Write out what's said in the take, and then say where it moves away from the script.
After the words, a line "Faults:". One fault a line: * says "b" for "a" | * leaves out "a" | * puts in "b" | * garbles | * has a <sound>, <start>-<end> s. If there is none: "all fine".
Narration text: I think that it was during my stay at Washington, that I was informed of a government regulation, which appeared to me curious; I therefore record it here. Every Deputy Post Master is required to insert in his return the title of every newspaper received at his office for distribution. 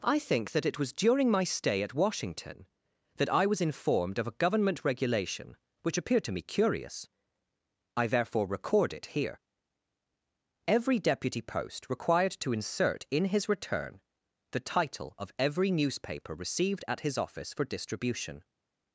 I think that it was during my stay at Washington, that I was informed of a government regulation, which appeared to me curious; I therefore record it here. Every Deputy Post required to insert in his return the title of every newspaper received at his office for distribution.
Faults:
* leaves out "Master is"